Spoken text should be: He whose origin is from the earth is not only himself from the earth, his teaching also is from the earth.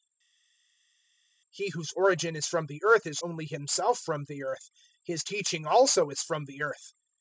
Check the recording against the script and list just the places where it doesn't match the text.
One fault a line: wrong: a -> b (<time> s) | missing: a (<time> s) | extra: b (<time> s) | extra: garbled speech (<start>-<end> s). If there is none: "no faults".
missing: not (3.2 s)